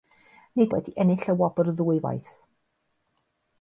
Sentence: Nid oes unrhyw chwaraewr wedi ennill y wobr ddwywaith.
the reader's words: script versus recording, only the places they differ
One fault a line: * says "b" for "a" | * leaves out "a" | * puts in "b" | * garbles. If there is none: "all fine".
* leaves out "oes unrhyw chwaraewr"